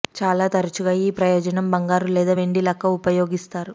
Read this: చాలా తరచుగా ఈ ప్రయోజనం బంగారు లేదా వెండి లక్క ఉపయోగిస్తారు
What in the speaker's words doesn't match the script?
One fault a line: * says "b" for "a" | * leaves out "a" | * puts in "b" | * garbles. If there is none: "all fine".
all fine